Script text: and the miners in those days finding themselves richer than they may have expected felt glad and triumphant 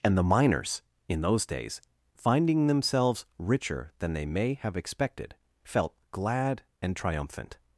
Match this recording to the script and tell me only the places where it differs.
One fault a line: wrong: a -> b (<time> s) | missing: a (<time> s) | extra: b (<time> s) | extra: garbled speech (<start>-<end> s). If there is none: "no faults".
no faults